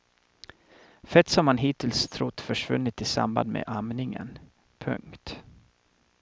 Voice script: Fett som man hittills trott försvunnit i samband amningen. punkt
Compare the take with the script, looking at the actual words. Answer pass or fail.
fail